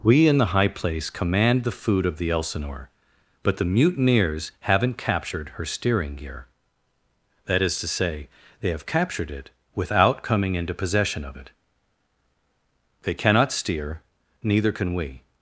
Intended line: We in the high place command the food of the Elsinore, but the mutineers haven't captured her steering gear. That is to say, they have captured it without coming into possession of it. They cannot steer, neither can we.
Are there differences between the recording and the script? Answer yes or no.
no